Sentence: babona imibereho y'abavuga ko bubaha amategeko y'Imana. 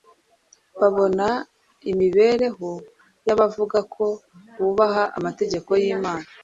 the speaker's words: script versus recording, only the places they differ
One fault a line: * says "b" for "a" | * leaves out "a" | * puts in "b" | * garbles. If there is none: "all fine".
all fine